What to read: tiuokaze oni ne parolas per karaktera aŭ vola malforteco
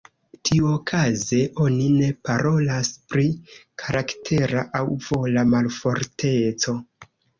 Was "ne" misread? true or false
false